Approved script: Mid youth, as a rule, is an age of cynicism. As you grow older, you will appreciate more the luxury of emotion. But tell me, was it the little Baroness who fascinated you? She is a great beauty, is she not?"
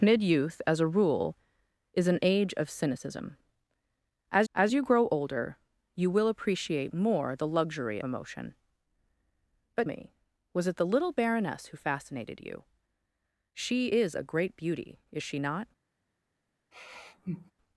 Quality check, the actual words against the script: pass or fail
fail